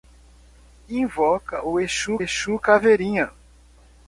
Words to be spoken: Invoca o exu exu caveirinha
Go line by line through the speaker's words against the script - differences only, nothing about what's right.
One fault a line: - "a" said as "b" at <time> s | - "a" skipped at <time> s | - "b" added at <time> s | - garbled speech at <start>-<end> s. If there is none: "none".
none